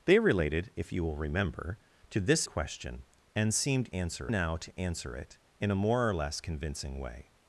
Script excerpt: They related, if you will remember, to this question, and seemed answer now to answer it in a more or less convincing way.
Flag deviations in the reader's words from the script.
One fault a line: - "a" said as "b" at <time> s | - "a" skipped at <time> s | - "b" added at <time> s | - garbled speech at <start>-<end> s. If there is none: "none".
none